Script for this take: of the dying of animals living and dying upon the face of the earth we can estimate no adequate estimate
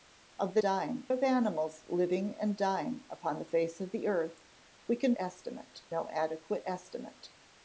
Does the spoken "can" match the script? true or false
true